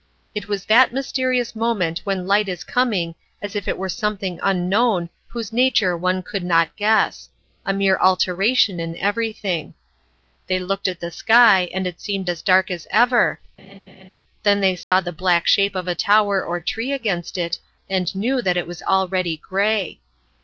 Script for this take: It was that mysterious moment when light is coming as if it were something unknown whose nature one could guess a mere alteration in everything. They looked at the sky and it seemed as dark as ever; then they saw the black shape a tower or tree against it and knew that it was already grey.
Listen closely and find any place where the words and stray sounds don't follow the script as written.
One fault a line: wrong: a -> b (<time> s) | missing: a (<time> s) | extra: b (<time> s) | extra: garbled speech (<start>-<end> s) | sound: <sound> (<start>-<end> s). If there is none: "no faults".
extra: not (6.4 s)
sound: laugh (13.6-14.1 s)
sound: dropout (14.8-14.9 s)
extra: of (15.8 s)